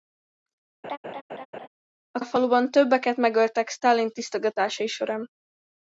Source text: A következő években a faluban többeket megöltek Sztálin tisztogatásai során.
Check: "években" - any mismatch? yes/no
yes